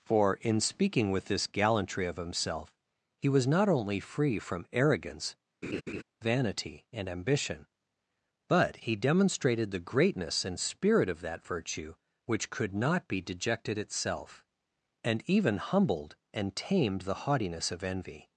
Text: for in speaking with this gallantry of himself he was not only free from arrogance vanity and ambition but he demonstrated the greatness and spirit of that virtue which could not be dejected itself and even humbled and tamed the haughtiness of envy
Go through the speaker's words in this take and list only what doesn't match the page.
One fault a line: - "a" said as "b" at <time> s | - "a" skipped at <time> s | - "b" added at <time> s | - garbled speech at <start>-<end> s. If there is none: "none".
none